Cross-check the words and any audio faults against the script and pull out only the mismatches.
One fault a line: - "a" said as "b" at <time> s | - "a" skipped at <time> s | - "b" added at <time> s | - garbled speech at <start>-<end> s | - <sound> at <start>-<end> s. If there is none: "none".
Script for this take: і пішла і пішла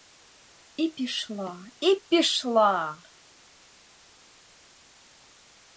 none